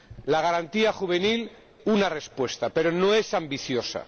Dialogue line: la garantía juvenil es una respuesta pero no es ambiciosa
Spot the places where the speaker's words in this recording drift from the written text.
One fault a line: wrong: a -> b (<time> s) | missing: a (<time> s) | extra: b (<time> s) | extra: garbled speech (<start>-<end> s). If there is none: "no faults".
missing: es (1.5 s)